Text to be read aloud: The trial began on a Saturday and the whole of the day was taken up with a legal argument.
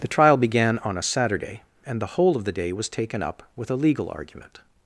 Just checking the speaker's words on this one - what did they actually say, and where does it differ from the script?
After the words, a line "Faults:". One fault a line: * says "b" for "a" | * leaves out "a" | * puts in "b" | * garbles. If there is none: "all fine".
The trial began on a Saturday and the whole of the day was taken up with a legal argument.
Faults:
all fine